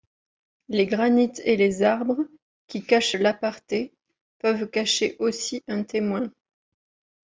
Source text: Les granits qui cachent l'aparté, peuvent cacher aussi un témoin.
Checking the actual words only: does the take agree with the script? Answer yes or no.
no